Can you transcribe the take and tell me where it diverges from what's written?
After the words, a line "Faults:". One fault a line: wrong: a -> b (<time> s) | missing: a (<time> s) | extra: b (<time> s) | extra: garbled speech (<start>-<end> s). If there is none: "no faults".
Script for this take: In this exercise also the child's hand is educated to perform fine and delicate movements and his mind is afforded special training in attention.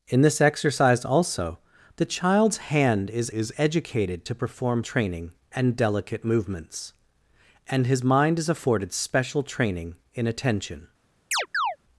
In this exercise also the child's hand is is educated to perform training and delicate movements and his mind is afforded special training in attention.
Faults:
extra: is (3.3 s)
wrong: fine -> training (4.8 s)